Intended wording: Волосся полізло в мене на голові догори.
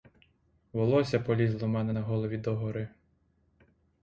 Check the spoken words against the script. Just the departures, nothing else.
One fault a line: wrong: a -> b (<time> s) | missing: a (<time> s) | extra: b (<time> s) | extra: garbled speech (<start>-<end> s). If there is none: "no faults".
no faults